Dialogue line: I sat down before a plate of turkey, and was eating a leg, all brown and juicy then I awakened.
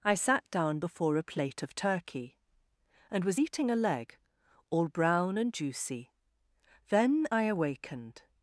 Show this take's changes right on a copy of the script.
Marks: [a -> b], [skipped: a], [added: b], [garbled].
I sat down before a plate of turkey, and was eating a leg, all brown and juicy then I awakened.